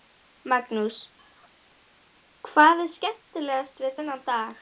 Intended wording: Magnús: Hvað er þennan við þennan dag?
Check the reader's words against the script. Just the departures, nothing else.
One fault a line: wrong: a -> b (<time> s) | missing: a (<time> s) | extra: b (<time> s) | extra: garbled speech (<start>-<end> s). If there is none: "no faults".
wrong: þennan -> skemmtilegast (3.0 s)